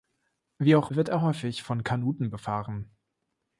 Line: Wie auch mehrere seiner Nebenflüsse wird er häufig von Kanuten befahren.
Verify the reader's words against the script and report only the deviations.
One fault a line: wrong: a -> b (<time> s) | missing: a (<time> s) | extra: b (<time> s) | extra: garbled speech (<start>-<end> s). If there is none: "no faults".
missing: mehrere seiner Nebenflüsse (0.9 s)